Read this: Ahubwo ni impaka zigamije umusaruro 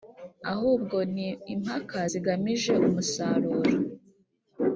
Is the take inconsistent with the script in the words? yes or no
no